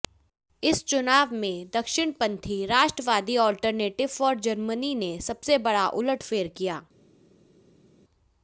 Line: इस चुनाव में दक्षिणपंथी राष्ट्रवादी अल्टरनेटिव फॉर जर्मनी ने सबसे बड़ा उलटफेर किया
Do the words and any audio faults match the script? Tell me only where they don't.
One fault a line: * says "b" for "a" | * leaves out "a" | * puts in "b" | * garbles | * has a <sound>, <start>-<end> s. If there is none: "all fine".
all fine